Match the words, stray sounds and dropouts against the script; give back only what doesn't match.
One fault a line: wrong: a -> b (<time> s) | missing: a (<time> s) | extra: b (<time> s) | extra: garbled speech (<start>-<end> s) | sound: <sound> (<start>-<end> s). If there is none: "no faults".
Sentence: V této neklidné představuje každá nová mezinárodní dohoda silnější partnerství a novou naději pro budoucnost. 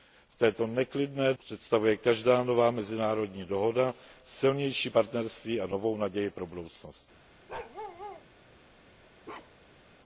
sound: bark (7.5-8.3 s)
sound: bark (9.2-9.8 s)